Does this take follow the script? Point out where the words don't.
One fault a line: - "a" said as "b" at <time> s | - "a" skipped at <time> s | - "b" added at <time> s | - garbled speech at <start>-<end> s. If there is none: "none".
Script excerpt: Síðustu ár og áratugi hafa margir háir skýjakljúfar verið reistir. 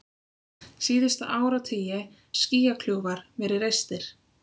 - "ár" skipped at 1.3 s
- "hafa margir háir" skipped at 2.0 s